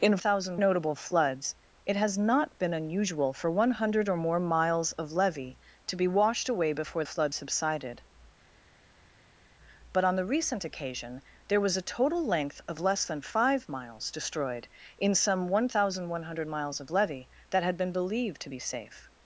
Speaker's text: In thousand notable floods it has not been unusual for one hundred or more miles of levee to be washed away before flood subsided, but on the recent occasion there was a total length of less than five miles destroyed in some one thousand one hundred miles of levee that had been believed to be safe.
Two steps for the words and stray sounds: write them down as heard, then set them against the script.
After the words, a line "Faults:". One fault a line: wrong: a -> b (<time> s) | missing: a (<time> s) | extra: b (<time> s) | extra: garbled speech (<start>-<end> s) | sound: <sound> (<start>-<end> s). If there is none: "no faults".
In thousand notable floods it has not been unusual for one hundred or more miles of levee to be washed away before flood subsided, but on the recent occasion there was a total length of less than five miles destroyed in some one thousand one hundred miles of levee that had been believed to be safe.
Faults:
no faults